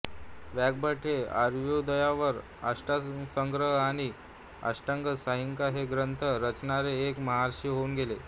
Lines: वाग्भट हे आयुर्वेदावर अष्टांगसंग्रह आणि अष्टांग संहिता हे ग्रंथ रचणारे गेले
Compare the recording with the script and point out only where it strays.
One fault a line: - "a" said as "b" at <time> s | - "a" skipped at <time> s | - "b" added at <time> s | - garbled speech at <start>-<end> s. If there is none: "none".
- "एक महर्षी होऊन" added at 7.1 s